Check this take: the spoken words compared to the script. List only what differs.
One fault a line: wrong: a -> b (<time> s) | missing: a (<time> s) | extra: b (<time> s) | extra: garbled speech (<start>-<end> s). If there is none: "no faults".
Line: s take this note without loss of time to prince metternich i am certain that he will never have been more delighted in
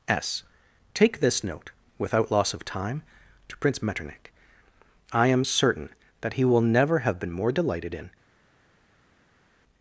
no faults